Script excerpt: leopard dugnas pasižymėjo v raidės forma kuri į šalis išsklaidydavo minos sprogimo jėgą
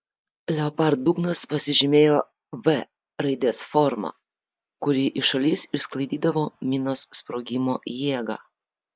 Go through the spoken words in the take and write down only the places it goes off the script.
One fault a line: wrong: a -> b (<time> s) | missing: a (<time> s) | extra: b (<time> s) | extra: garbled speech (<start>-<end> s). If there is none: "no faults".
no faults